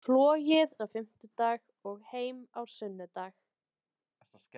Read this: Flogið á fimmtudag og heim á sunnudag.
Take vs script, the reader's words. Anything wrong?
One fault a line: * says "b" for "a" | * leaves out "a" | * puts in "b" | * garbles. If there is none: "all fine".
all fine